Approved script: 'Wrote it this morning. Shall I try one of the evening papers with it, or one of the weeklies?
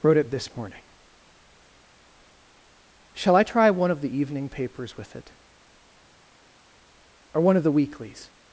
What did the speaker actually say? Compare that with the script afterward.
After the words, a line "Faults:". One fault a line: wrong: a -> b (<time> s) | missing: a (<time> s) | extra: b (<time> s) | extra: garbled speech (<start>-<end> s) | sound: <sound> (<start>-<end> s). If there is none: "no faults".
'Wrote it this morning. Shall I try one of the evening papers with it, or one of the weeklies?
Faults:
no faults